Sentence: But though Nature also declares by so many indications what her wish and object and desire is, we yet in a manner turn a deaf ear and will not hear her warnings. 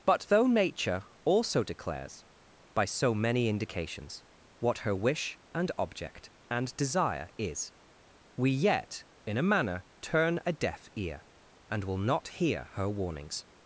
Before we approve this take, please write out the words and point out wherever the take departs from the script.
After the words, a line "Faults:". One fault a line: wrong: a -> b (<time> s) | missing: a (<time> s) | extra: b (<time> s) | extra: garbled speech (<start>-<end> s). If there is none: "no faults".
But though Nature also declares by so many indications what her wish and object and desire is, we yet in a manner turn a deaf ear and will not hear her warnings.
Faults:
no faults